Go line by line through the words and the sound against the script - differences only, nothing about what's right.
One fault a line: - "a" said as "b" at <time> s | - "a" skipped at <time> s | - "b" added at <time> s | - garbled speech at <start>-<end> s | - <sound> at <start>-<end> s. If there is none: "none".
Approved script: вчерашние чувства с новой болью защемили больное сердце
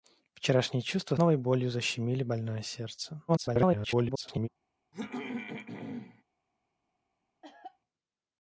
- "с" skipped at 1.1 s
- garbled speech at 3.3-4.5 s
- throat clearing at 4.9-6.2 s
- cough at 7.4-7.8 s